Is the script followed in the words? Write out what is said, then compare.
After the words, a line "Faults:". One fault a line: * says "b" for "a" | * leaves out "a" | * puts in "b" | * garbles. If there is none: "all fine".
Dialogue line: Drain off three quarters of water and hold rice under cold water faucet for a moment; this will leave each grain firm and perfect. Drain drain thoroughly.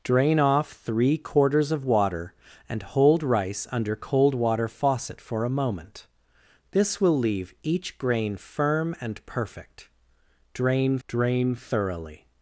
Drain off three quarters of water and hold rice under cold water faucet for a moment; this will leave each grain firm and perfect. Drain drain thoroughly.
Faults:
all fine